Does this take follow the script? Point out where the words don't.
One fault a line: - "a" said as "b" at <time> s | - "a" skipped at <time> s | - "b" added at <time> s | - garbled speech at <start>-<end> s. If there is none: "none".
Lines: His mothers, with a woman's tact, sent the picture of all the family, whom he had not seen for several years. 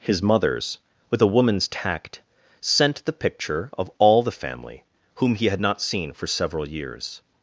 none